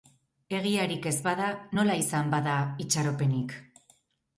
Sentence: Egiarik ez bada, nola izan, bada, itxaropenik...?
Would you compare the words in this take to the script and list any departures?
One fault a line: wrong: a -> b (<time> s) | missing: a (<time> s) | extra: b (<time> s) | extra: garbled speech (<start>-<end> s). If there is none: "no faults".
no faults